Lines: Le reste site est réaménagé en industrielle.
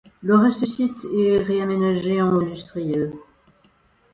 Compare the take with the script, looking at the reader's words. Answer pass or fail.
pass